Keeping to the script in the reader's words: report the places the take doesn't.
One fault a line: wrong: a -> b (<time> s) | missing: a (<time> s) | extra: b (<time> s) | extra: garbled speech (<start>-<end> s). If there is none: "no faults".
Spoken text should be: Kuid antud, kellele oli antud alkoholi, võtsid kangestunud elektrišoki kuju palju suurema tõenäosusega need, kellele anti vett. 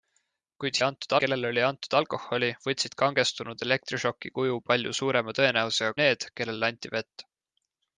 no faults